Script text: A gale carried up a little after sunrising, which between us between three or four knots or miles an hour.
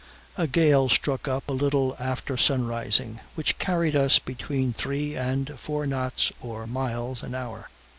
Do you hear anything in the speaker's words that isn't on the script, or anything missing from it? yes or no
yes